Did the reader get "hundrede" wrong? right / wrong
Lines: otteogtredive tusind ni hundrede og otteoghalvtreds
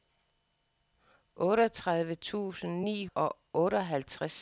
wrong